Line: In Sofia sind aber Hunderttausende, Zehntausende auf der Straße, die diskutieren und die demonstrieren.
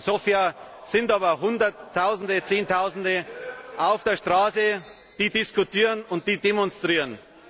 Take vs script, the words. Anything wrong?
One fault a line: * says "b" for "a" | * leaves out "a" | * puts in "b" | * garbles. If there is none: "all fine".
all fine